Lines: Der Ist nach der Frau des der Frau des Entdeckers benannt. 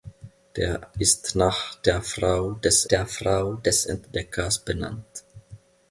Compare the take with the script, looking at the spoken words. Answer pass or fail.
pass